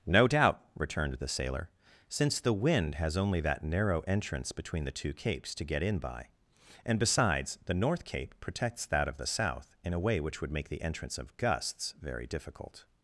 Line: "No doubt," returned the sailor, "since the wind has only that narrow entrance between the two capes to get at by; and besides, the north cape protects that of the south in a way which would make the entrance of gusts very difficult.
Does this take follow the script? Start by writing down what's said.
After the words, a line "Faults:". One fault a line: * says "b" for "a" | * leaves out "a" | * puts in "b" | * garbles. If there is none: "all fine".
"No doubt," returned the sailor, "since the wind has only that narrow entrance between the two capes to get in by; and besides, the north cape protects that of the south in a way which would make the entrance of gusts very difficult.
Faults:
* says "in" for "at"